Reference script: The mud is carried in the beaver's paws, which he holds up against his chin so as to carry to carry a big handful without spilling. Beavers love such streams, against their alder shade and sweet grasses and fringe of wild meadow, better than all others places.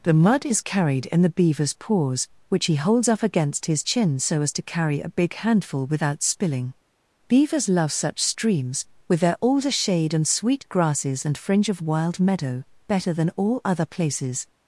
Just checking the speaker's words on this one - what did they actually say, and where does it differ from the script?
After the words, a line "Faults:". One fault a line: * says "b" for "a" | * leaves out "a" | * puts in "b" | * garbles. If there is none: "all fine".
The mud is carried in the beaver's paws, which he holds up against his chin so as to carry a big handful without spilling. Beavers love such streams, with their alder shade and sweet grasses and fringe of wild meadow, better than all other places.
Faults:
* leaves out "to carry"
* says "with" for "against"
* says "other" for "others"